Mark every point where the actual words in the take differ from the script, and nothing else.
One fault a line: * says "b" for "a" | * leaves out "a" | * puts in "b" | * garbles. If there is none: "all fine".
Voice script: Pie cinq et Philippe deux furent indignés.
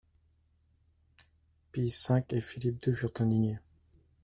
all fine